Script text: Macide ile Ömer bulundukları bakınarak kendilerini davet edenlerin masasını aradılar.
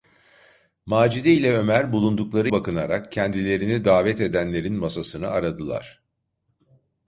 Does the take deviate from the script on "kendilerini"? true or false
false